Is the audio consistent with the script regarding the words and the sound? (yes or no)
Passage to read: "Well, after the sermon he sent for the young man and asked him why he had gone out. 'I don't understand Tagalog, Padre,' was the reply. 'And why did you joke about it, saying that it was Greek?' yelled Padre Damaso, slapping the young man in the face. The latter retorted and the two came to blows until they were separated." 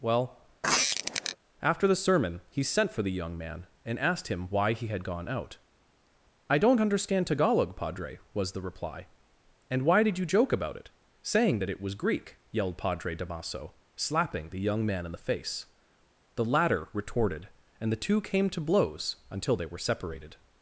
no